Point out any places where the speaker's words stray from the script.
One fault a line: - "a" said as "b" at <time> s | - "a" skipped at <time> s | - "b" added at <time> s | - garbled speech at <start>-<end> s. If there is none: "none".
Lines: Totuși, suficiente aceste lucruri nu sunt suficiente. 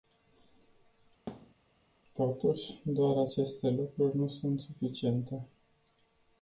- "suficiente" said as "doar" at 2.8 s